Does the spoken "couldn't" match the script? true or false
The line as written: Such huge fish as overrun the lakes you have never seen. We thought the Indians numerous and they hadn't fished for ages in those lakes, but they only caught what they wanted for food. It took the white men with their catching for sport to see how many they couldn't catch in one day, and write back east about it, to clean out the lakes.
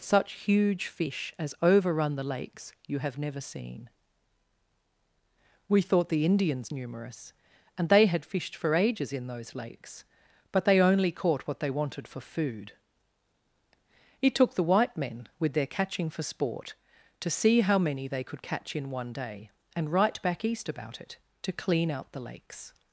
false